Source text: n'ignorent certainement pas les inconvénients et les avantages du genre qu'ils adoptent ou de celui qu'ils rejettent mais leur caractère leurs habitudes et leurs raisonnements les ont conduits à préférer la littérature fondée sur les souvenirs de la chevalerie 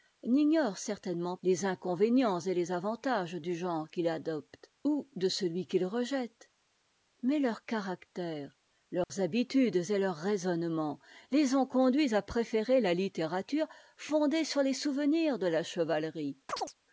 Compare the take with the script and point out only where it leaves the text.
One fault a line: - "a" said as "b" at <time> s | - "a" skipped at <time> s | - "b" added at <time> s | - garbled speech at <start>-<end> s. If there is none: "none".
- "pas" skipped at 1.4 s